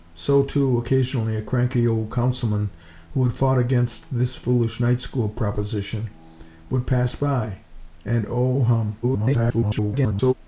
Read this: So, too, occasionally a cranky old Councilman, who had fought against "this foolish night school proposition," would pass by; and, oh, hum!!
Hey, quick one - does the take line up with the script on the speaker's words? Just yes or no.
no